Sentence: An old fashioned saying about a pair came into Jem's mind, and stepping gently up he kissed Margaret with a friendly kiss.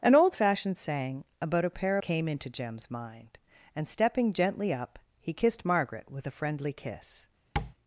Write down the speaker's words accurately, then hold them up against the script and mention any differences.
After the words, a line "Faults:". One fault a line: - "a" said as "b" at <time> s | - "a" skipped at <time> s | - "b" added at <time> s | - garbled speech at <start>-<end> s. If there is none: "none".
An old fashioned saying about a pair came into Jem's mind, and stepping gently up he kissed Margaret with a friendly kiss.
Faults:
none